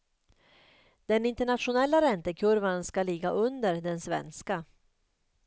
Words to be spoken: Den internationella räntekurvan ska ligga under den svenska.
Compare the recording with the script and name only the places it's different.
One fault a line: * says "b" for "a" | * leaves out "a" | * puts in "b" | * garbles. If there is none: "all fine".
all fine